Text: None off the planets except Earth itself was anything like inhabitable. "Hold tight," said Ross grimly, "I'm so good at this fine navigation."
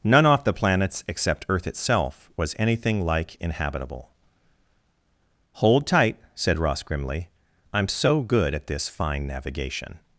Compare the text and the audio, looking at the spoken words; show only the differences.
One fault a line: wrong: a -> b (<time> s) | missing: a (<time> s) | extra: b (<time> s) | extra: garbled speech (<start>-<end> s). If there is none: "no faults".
no faults